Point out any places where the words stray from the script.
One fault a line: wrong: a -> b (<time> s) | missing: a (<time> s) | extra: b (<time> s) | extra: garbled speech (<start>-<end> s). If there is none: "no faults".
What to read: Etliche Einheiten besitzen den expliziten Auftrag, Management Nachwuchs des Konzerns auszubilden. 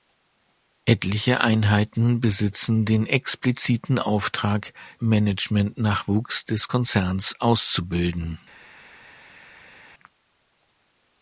no faults